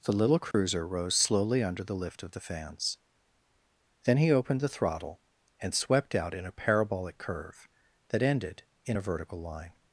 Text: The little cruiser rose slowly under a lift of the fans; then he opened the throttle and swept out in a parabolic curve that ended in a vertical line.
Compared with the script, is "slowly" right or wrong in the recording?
right